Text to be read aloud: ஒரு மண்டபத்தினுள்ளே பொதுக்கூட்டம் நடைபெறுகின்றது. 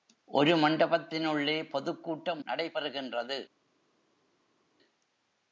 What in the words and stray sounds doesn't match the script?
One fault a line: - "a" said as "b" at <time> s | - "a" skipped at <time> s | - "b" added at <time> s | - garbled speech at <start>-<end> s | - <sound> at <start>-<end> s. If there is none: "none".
none